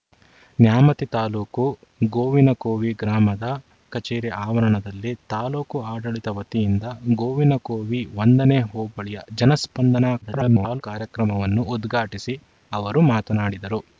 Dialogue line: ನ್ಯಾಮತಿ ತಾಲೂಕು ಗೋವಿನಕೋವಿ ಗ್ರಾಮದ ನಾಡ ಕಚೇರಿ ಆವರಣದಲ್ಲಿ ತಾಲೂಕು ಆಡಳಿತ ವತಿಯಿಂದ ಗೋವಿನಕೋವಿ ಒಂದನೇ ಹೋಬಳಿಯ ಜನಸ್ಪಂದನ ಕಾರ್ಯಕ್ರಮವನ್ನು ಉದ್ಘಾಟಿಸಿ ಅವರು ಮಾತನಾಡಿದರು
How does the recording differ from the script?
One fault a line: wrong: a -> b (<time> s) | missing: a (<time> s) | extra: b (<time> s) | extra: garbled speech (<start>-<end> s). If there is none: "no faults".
missing: ನಾಡ (3.5 s)
extra: garbled speech (10.2-10.8 s)